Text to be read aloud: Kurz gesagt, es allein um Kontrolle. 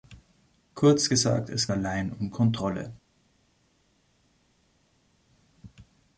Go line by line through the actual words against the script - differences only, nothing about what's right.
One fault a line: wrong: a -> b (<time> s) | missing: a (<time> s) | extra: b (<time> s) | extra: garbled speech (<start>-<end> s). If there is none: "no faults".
no faults